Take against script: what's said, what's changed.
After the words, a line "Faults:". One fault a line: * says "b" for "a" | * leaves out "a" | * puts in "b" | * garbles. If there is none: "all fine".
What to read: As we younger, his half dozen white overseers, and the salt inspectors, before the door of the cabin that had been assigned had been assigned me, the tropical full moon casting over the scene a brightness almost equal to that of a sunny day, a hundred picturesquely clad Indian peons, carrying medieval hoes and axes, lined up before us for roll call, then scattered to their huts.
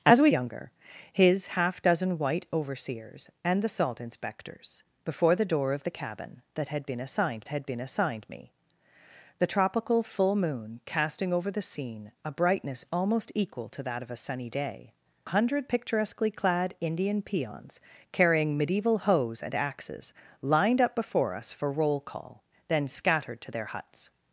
As we younger, his half dozen white overseers, and the salt inspectors, before the door of the cabin that had been assigned had been assigned me, the tropical full moon casting over the scene a brightness almost equal to that of a sunny day, a hundred picturesquely clad Indian peons, carrying medieval hoes and axes, lined up before us for roll call, then scattered to their huts.
Faults:
all fine